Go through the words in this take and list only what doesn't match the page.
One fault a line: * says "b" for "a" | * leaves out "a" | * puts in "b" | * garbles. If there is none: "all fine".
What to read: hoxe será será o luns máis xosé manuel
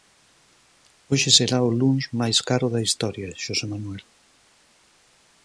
* leaves out "será"
* puts in "caro da historia"